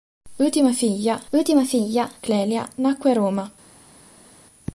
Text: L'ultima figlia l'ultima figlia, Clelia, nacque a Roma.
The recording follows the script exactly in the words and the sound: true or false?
true